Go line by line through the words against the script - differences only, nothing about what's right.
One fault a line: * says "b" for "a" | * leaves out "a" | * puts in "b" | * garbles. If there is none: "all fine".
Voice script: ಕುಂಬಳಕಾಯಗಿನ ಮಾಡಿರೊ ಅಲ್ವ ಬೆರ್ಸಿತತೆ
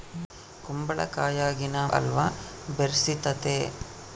* leaves out "ಮಾಡಿರೊ"